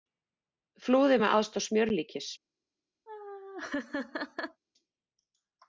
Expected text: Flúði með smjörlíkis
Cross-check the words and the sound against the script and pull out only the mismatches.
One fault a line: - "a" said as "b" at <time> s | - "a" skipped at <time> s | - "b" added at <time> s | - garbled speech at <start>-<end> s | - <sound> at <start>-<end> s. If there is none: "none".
- "aðstoð" added at 1.4 s
- laugh at 3.1-4.6 s